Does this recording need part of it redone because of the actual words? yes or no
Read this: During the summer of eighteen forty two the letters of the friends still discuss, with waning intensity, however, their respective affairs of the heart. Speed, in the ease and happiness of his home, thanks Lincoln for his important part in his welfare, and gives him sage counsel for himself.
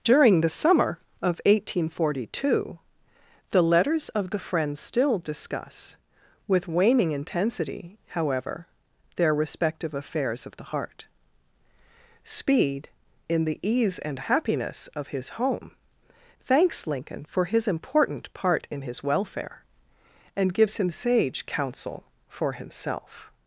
no